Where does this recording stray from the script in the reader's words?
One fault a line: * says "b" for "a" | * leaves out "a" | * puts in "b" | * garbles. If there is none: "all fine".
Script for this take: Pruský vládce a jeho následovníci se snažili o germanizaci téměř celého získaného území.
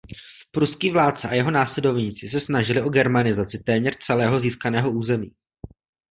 all fine